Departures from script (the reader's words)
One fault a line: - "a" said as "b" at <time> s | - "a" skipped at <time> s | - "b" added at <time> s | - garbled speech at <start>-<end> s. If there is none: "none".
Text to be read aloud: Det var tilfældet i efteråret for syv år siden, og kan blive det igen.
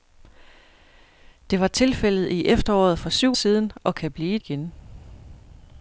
- "år" skipped at 3.4 s
- "det" skipped at 4.4 s